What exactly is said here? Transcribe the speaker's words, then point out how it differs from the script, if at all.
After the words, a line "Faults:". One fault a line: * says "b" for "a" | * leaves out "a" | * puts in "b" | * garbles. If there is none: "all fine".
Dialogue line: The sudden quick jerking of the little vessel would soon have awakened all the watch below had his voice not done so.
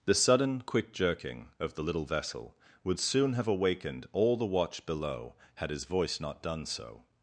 The sudden quick jerking of the little vessel would soon have awakened all the watch below had his voice not done so.
Faults:
all fine